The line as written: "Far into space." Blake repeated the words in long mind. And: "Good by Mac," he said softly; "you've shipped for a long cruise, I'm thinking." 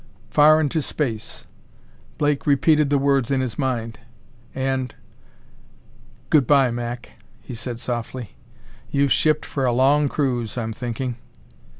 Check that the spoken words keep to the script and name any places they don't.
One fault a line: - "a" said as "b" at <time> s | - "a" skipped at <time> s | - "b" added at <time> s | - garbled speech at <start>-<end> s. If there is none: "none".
- "long" said as "his" at 3.4 s